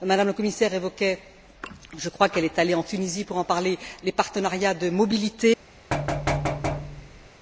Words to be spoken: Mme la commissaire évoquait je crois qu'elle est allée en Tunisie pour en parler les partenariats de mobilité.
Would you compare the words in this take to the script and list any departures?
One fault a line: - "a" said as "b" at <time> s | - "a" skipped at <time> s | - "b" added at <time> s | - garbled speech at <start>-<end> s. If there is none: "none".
none